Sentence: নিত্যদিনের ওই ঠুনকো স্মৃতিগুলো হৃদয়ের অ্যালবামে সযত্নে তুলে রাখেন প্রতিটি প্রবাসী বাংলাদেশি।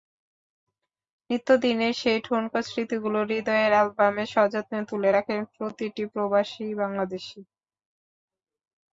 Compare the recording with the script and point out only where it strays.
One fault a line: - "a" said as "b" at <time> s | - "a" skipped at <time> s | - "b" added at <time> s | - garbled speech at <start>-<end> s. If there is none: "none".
- "ওই" said as "সেই" at 2.0 s